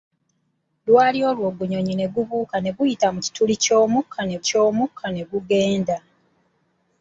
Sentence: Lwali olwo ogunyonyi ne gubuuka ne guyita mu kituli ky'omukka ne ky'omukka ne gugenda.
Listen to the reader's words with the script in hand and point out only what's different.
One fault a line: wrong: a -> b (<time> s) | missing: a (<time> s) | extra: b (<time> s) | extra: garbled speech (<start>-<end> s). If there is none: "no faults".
no faults